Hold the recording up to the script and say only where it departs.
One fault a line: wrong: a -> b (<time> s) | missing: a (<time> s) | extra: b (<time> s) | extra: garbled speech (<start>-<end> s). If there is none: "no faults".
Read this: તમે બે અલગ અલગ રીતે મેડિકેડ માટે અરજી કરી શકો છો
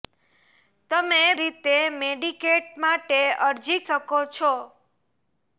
missing: બે અલગ અલગ (1.2 s)
missing: કરી (3.8 s)